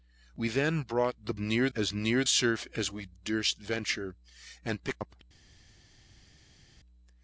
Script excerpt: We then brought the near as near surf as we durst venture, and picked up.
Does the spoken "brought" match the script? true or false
true